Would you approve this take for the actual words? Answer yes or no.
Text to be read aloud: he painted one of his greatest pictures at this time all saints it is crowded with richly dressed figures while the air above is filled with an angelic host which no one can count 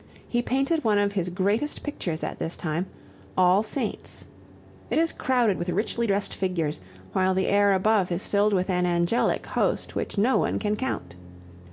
yes